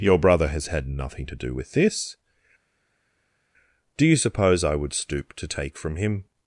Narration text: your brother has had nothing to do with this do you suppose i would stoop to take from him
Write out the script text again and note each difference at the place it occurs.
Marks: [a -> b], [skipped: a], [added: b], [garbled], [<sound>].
your brother has had nothing to do with this do you suppose i would stoop to take from him